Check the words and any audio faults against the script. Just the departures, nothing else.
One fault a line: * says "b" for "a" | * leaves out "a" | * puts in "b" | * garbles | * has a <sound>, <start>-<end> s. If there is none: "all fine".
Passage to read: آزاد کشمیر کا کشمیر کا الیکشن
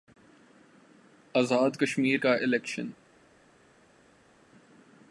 * leaves out "کشمیر کا"